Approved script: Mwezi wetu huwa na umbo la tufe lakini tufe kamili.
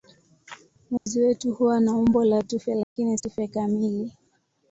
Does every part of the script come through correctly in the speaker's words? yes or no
yes